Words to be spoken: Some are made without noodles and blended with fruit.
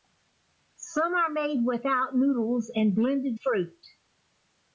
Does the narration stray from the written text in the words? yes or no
yes